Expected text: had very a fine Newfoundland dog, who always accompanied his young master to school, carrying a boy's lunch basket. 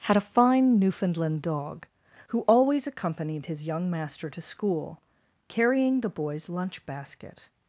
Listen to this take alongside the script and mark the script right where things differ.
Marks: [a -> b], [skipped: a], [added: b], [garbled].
had [skipped: very] a fine Newfoundland dog, who always accompanied his young master to school, carrying [a -> the] boy's lunch basket.